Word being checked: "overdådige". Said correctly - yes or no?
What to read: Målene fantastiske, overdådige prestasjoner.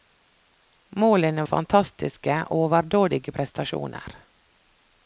yes